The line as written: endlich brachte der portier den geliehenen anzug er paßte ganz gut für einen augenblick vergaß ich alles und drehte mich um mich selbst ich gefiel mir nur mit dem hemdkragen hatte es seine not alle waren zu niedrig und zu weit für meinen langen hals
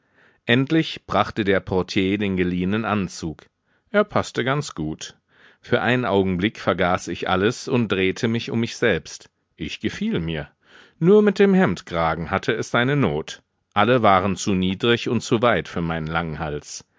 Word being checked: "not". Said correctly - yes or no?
yes